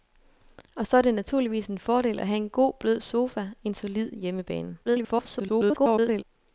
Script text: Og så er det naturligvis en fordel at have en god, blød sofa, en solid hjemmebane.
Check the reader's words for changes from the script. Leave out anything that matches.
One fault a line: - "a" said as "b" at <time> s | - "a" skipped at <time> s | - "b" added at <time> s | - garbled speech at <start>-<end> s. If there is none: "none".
- garbled speech at 4.8-6.2 s